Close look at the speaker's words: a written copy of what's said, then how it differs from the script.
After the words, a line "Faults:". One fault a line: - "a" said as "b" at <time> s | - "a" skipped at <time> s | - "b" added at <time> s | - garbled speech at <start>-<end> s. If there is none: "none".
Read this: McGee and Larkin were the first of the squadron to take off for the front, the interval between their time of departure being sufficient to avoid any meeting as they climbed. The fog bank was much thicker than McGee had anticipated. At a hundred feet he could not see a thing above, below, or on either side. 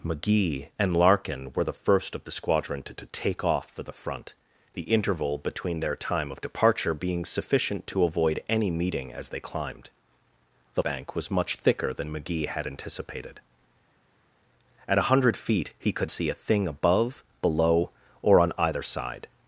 McGee and Larkin were the first of the squadron to to take off for the front, the interval between their time of departure being sufficient to avoid any meeting as they climbed. The bank was much thicker than McGee had anticipated. At a hundred feet he could see a thing above, below, or on either side.
Faults:
- "to" added at 2.9 s
- "fog" skipped at 10.8 s
- "not" skipped at 16.1 s